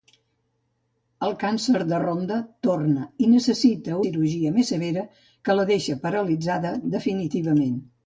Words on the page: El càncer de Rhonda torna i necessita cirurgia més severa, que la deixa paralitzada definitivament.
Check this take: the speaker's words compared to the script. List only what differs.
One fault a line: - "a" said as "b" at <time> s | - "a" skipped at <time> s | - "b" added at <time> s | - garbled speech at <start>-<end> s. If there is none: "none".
none